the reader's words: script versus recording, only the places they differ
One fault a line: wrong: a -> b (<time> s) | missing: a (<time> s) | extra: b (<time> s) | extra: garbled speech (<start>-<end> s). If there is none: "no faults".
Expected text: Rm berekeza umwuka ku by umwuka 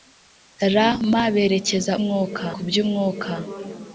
no faults